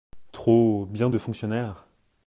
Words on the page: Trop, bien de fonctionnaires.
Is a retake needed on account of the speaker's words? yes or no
no